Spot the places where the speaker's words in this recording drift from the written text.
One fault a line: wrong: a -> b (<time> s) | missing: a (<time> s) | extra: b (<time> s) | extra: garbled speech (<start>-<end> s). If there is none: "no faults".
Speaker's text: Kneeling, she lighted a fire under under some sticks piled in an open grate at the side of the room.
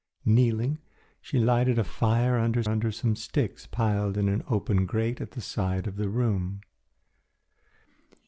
no faults